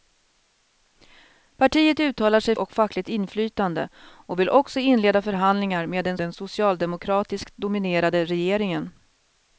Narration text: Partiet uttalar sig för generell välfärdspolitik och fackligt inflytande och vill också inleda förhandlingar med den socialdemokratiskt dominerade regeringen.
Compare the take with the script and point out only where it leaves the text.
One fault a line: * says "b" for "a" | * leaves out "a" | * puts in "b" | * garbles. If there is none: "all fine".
* leaves out "för generell välfärdspolitik"
* puts in "den"